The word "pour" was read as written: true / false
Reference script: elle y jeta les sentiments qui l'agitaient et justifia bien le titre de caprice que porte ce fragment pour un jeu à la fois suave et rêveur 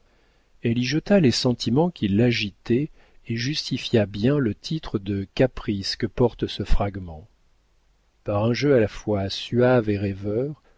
false